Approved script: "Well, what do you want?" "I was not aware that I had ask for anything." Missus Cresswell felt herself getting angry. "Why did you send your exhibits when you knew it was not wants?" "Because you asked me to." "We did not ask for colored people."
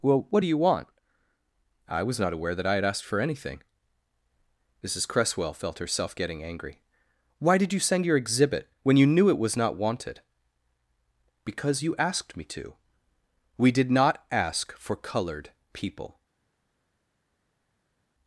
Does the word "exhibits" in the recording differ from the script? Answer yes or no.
yes